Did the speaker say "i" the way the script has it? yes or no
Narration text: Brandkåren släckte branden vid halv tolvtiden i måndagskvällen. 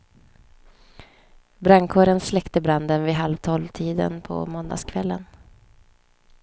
no